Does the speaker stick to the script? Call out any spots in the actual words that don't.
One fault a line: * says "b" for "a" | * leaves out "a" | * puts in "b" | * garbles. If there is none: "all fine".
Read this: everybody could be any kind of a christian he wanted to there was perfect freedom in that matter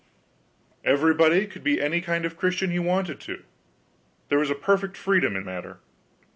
* leaves out "that"